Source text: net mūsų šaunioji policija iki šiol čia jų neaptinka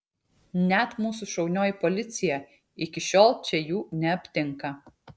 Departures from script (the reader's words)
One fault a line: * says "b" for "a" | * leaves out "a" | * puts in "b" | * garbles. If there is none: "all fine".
all fine